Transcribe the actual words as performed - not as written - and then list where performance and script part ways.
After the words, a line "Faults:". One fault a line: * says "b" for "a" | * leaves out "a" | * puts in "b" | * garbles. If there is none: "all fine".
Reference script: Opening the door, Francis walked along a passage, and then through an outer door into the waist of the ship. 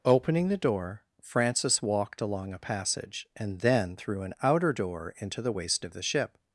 Opening the door, Francis walked along a passage, and then through an outer door into the waist of the ship.
Faults:
all fine